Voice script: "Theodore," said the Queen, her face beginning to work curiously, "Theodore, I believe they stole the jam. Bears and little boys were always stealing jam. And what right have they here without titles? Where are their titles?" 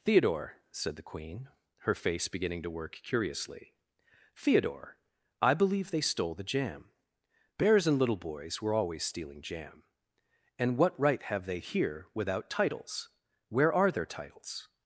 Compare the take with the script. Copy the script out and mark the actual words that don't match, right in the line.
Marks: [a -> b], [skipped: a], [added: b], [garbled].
"Theodore," said the Queen, her face beginning to work curiously, "Theodore, I believe they stole the jam. Bears and little boys were always stealing jam. And what right have they here without titles? Where are their titles?"